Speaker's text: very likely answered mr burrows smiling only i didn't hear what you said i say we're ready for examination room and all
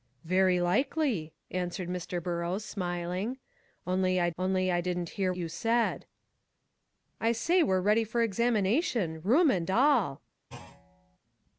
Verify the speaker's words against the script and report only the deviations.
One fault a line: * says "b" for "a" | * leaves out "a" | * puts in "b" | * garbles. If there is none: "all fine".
* puts in "only i"
* leaves out "what"